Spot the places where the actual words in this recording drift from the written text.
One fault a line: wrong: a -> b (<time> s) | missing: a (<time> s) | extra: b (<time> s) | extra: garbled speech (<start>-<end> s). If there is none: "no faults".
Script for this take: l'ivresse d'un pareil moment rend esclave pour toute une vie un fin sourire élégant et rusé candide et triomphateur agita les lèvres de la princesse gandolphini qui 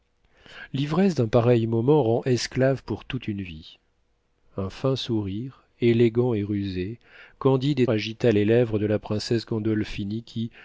missing: triomphateur (7.9 s)